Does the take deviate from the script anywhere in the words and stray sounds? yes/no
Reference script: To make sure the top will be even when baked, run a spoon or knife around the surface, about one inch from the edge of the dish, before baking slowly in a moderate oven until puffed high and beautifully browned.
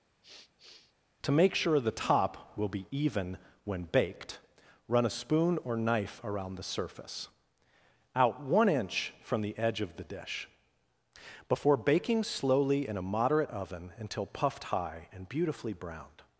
yes